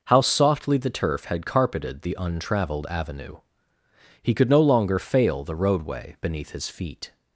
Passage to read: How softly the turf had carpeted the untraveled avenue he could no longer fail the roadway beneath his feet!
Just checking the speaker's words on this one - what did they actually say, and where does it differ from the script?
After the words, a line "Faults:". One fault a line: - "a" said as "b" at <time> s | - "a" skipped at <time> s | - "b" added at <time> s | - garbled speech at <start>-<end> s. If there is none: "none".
How softly the turf had carpeted the untraveled avenue he could no longer fail the roadway beneath his feet!
Faults:
none